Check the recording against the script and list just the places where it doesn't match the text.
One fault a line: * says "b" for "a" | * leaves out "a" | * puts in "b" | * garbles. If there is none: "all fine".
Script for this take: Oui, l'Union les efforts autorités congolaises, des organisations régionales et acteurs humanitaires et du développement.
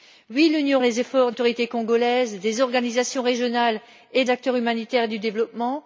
all fine